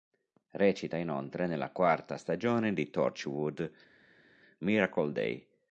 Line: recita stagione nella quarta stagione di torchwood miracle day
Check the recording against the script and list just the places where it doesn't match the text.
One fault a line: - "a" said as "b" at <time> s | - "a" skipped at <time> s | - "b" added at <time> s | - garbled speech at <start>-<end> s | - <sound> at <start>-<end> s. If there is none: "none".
- "stagione" said as "inoltre" at 1.0 s